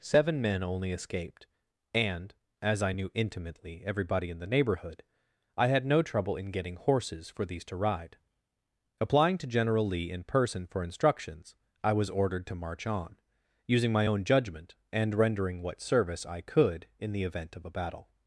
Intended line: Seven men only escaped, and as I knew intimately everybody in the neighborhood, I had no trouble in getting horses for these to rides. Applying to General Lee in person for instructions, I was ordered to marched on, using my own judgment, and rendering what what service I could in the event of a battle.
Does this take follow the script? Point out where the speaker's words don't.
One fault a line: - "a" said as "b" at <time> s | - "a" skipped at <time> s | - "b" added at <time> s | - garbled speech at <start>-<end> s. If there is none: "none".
- "rides" said as "ride" at 7.8 s
- "marched" said as "march" at 12.6 s
- "what" skipped at 15.8 s